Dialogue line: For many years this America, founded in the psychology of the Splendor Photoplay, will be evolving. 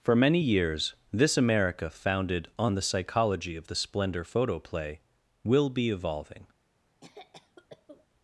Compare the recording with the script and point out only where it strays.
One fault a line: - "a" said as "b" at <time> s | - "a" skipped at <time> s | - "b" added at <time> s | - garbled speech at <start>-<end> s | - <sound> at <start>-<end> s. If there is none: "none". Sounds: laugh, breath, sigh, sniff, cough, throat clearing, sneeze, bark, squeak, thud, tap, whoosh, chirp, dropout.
- "in" said as "on" at 2.6 s
- cough at 7.0-8.1 s